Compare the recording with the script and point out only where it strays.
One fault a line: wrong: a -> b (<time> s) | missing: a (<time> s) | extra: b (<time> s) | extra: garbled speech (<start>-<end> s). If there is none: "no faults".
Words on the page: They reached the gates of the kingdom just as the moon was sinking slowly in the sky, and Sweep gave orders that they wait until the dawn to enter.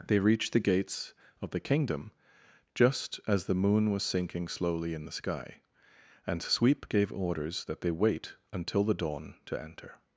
no faults